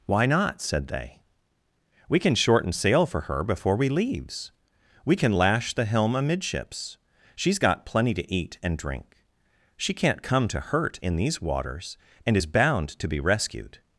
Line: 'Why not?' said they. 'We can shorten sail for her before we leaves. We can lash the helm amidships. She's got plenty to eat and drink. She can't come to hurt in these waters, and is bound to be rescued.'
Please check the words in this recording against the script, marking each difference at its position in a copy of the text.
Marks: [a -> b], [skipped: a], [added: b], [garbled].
'Why not?' said they. 'We can shorten sail for her before we leaves. We can lash the helm amidships. She's got plenty to eat and drink. She can't come to hurt in these waters, and is bound to be rescued.'